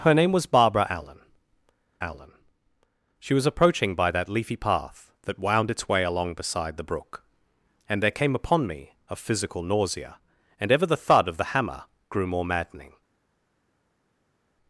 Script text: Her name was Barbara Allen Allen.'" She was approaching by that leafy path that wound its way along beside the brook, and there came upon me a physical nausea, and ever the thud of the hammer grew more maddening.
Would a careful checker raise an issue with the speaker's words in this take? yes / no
no